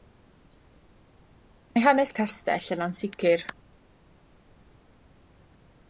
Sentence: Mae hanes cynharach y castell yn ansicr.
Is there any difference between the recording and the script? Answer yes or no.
yes